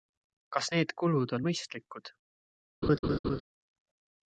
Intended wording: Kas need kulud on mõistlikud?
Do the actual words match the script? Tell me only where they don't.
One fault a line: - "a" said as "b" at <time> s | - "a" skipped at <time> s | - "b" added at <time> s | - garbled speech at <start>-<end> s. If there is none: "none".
none